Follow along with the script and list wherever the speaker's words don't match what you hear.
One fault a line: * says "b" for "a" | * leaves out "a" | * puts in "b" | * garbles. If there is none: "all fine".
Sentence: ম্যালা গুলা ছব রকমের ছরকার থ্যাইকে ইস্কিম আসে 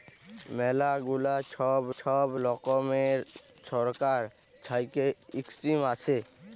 * puts in "ছব"